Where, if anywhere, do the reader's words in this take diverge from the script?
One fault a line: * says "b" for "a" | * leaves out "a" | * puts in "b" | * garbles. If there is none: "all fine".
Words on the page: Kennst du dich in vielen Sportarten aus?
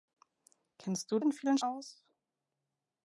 * leaves out "dich"
* leaves out "Sportarten"